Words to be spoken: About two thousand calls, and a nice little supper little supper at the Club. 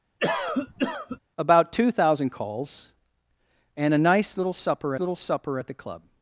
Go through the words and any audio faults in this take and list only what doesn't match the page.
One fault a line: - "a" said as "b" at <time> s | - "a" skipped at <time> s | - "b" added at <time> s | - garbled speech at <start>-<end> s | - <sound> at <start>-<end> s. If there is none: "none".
- cough at 0.2-1.2 s